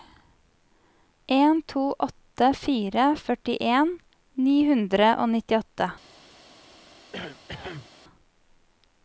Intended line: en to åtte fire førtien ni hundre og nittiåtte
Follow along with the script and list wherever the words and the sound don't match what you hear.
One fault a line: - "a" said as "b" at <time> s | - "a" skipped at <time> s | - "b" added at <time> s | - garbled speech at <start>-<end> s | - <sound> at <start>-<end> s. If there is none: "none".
- cough at 7.1-7.9 s